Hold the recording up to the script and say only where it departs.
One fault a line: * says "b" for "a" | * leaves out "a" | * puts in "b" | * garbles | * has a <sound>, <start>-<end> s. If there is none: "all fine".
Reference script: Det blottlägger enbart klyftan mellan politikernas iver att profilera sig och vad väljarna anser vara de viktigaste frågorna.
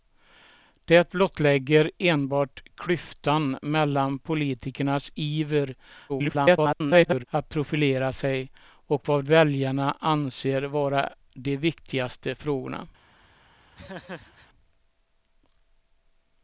* garbles
* has a laugh, 13.8-14.5 s